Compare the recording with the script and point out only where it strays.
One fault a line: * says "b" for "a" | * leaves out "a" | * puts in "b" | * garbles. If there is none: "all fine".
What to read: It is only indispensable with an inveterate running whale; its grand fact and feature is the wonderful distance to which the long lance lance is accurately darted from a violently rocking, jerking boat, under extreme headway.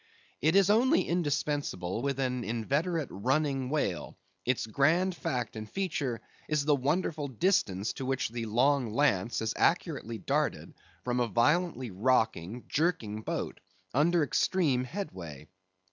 * leaves out "lance"